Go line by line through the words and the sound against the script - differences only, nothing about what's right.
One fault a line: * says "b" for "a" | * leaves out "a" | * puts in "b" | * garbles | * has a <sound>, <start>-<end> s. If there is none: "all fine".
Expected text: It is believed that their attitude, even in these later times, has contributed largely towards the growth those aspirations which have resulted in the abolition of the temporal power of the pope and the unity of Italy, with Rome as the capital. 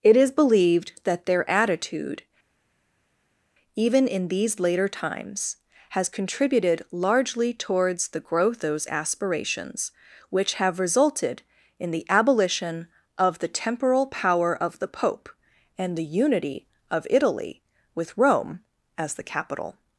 all fine